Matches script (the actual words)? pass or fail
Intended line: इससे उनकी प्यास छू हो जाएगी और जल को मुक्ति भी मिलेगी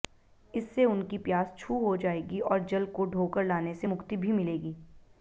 fail